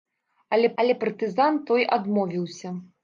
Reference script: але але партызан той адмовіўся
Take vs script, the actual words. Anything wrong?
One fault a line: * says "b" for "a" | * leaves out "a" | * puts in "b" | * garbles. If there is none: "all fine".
all fine